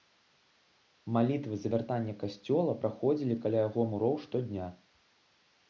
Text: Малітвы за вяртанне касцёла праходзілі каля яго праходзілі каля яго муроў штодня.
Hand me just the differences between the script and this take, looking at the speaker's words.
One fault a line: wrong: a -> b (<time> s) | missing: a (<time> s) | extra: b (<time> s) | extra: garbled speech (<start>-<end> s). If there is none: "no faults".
missing: праходзілі каля яго (3.8 s)